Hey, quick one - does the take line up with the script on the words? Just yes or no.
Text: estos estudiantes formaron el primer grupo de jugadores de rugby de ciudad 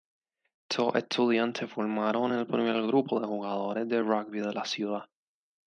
no